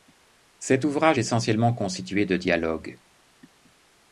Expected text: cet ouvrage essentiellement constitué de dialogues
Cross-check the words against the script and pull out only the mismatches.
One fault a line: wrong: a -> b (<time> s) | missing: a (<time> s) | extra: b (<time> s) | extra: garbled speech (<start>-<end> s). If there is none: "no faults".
no faults